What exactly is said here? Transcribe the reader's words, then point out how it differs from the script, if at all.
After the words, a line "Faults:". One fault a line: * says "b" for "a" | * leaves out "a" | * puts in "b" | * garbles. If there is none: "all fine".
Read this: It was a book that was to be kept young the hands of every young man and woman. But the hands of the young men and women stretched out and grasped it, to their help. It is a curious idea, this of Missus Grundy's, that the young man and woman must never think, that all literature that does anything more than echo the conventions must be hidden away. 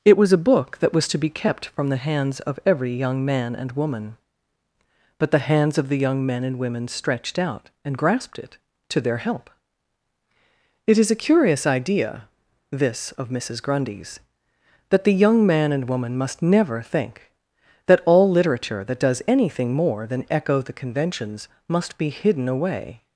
It was a book that was to be kept from the hands of every young man and woman. But the hands of the young men and women stretched out and grasped it, to their help. It is a curious idea, this of Missus Grundy's, that the young man and woman must never think, that all literature that does anything more than echo the conventions must be hidden away.
Faults:
* says "from" for "young"